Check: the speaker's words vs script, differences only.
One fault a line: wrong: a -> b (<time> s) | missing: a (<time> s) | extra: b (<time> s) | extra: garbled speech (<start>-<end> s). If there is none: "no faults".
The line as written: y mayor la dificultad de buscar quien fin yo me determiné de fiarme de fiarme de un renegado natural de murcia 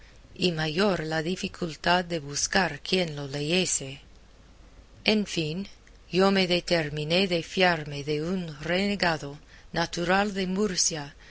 extra: lo leyese en (3.2 s)
missing: fiarme de (8.2 s)